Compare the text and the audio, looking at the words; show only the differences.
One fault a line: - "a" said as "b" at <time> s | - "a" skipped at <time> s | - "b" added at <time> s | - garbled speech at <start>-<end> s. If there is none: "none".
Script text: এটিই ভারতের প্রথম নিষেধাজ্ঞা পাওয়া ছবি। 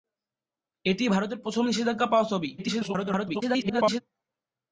- garbled speech at 2.6-4.0 s